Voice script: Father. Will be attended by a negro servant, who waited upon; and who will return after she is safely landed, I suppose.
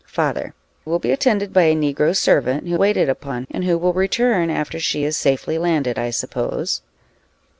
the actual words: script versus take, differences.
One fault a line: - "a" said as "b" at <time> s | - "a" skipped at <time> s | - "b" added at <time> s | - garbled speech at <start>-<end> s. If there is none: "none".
none